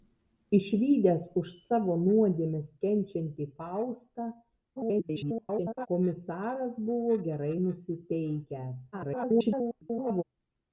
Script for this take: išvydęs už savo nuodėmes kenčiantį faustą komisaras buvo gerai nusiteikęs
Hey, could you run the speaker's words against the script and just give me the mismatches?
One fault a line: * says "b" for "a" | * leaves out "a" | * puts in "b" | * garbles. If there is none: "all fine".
* garbles
* garbles